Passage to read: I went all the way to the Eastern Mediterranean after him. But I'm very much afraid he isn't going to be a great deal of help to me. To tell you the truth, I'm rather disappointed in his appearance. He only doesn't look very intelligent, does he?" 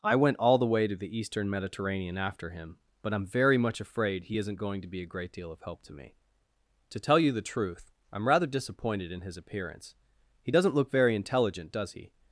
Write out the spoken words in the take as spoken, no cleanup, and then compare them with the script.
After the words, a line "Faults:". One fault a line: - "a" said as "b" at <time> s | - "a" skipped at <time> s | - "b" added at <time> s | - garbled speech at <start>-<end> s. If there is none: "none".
I went all the way to the Eastern Mediterranean after him. But I'm very much afraid he isn't going to be a great deal of help to me. To tell you the truth, I'm rather disappointed in his appearance. He doesn't look very intelligent, does he?"
Faults:
- "only" skipped at 10.5 s